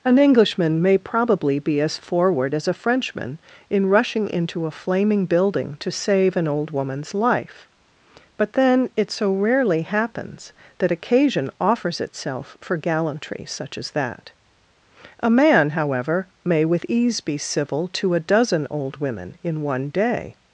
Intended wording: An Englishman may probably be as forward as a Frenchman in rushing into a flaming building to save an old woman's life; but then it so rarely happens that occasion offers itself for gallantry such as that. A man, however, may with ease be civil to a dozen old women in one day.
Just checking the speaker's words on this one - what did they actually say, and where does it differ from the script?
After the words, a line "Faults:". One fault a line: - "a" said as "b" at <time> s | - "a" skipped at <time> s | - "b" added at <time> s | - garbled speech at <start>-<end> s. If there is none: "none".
An Englishman may probably be as forward as a Frenchman in rushing into a flaming building to save an old woman's life; but then it so rarely happens that occasion offers itself for gallantry such as that. A man, however, may with ease be civil to a dozen old women in one day.
Faults:
none